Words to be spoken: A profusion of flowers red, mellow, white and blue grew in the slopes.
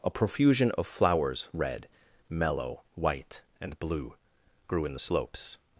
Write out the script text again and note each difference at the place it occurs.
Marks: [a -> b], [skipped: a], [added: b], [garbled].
A profusion of flowers red, mellow, white and blue grew in the slopes.